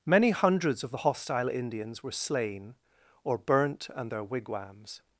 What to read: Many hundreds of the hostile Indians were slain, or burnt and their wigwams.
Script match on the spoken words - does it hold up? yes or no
yes